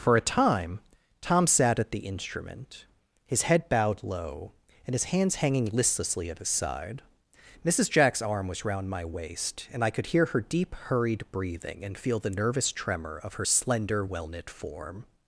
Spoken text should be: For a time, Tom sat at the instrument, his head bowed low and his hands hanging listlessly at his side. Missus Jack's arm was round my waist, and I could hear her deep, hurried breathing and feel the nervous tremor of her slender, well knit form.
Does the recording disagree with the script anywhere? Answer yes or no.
no